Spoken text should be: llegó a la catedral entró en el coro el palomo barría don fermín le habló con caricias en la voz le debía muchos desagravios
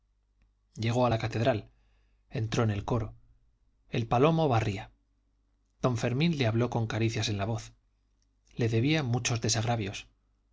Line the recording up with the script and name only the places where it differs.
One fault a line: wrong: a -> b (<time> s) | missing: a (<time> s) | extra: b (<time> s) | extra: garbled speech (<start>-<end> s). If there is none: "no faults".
no faults